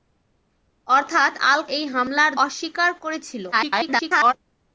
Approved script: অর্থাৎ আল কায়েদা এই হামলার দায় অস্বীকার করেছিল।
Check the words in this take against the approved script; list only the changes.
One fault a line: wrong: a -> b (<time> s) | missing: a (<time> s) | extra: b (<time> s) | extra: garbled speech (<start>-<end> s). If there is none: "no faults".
missing: কায়েদা (1.6 s)
missing: দায় (2.3 s)
extra: garbled speech (3.5-4.3 s)